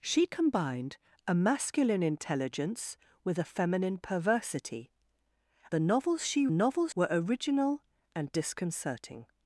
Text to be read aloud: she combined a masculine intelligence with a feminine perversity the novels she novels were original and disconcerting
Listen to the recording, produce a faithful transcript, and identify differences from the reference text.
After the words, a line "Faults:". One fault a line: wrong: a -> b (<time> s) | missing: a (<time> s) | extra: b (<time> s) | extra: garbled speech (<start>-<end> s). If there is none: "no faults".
she combined a masculine intelligence with a feminine perversity the novels she novels were original and disconcerting
Faults:
no faults